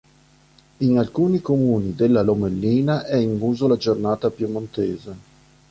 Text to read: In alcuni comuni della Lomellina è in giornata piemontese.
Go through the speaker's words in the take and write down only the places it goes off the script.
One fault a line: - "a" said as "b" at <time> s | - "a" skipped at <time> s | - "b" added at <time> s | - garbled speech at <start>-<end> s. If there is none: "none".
- "uso la" added at 3.4 s